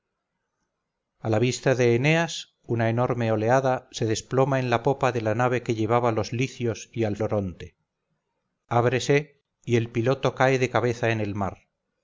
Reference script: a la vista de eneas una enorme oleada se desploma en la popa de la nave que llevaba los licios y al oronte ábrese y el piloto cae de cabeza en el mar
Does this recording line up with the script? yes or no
yes